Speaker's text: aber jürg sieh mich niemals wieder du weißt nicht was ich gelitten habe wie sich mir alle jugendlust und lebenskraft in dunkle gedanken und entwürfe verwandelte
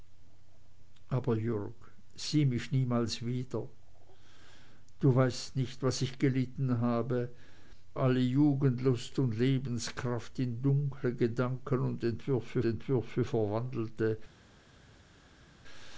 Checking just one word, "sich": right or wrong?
wrong